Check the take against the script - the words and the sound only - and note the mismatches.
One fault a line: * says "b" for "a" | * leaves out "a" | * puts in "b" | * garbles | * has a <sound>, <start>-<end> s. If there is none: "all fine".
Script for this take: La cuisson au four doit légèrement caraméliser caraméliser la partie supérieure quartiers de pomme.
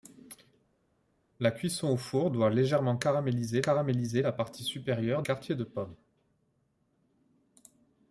all fine